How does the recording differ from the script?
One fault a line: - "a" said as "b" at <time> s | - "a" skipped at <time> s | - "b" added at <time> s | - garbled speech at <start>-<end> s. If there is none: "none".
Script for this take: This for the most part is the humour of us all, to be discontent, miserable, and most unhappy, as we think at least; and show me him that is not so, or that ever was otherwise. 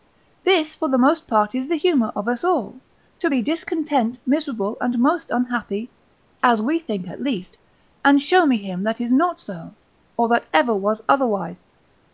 none